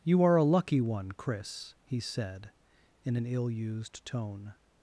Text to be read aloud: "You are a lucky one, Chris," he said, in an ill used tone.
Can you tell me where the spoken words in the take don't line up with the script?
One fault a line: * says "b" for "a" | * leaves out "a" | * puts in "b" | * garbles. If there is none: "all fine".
all fine